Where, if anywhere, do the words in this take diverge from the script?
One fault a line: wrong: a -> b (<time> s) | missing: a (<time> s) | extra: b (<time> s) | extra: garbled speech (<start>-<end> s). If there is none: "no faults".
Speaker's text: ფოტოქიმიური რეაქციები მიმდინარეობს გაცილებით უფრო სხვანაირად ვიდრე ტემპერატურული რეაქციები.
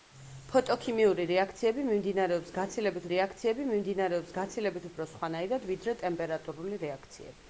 extra: რეაქციები მიმდინარეობს გაცილებით (3.1 s)